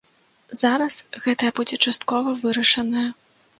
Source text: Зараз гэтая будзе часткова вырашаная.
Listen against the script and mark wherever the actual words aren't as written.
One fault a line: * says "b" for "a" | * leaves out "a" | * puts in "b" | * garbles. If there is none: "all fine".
all fine